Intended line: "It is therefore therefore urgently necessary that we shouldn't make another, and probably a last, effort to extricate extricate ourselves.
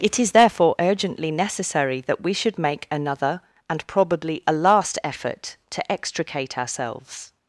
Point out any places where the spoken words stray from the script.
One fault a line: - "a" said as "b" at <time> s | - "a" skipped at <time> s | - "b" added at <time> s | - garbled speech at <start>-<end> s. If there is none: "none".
- "therefore" skipped at 0.8 s
- "shouldn't" said as "should" at 2.3 s
- "extricate" skipped at 6.6 s